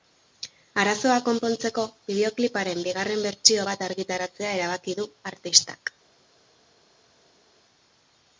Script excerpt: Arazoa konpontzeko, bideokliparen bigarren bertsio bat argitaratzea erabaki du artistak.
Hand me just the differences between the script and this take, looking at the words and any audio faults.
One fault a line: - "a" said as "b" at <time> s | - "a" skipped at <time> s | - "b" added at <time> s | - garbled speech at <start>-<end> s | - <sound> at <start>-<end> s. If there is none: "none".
none